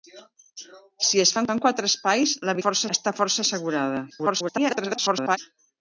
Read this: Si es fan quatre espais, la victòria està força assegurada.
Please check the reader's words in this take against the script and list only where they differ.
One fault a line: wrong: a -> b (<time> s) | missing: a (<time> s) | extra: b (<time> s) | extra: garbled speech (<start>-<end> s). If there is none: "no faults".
extra: fan (1.5 s)
wrong: victòria -> força (2.6 s)
extra: garbled speech (4.1-5.4 s)